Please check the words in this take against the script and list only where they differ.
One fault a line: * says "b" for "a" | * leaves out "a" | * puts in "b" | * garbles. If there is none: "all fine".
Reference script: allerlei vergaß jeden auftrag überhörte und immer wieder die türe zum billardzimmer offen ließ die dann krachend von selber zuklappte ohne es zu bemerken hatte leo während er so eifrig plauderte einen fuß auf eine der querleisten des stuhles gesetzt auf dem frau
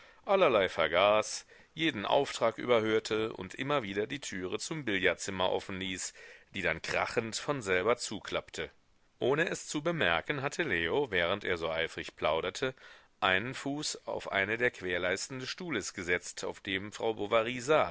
all fine